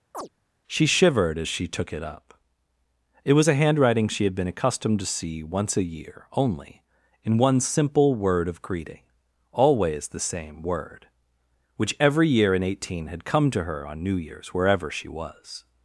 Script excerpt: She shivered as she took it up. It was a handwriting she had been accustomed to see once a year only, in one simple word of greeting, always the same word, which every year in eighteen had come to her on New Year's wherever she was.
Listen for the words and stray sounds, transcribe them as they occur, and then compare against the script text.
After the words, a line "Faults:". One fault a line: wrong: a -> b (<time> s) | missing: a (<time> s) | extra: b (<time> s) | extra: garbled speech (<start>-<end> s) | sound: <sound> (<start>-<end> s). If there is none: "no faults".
She shivered as she took it up. It was a handwriting she had been accustomed to see once a year only, in one simple word of greeting, always the same word, which every year in eighteen had come to her on New Year's wherever she was.
Faults:
sound: chirp (0.1-0.3 s)